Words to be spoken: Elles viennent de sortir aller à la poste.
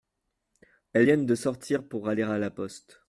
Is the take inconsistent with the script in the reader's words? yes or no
yes